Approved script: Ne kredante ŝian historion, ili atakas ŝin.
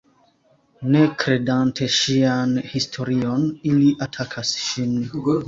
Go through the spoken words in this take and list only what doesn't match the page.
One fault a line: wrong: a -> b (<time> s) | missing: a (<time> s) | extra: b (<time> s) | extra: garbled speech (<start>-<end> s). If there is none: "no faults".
no faults